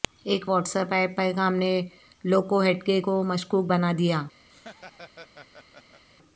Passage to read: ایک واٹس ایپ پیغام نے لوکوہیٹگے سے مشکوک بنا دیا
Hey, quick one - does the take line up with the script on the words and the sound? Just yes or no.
no